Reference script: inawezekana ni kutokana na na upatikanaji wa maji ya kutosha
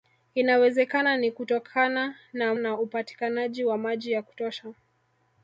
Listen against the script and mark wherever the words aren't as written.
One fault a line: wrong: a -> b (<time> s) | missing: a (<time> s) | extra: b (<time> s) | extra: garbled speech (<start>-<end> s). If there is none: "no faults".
no faults